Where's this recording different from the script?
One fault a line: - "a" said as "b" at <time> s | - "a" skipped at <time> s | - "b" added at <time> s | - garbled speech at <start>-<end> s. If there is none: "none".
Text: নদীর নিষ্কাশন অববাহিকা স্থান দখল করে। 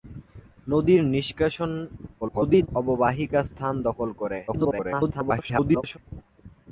- garbled speech at 2.2-2.7 s
- garbled speech at 4.5-6.0 s